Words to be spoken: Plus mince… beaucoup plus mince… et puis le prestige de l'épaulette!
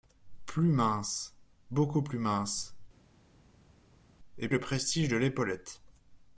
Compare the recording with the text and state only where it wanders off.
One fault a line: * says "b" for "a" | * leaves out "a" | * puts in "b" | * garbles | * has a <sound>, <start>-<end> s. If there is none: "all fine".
* leaves out "puis"